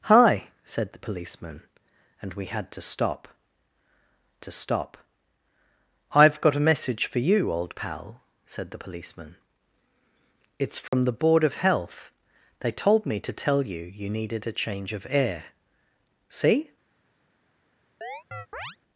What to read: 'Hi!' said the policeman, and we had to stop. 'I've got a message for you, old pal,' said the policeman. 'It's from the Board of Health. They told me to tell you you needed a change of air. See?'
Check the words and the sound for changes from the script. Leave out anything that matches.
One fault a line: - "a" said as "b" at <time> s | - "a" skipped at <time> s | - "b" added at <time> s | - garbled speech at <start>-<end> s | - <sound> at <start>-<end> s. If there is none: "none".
- "to stop" added at 4.4 s
- dropout at 10.9-10.9 s
- chirp at 18.0-18.8 s